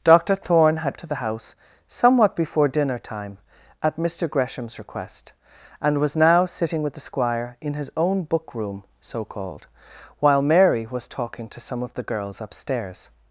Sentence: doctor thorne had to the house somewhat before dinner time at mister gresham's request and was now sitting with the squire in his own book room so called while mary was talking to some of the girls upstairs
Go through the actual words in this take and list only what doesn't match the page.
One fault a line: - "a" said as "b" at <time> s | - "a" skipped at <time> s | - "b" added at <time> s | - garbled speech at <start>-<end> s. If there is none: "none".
none